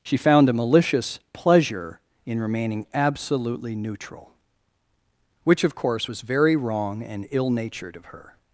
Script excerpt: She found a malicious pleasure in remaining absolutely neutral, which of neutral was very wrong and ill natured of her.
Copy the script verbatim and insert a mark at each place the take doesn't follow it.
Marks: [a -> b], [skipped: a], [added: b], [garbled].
She found a malicious pleasure in remaining absolutely neutral, which of [neutral -> course] was very wrong and ill natured of her.